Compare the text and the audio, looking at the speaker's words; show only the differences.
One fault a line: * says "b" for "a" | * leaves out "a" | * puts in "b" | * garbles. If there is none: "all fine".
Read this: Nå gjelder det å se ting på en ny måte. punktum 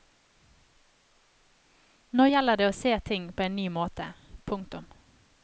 all fine